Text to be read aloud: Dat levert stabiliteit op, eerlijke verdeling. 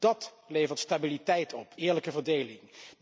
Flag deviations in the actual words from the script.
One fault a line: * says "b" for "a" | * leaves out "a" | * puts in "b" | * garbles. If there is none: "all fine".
all fine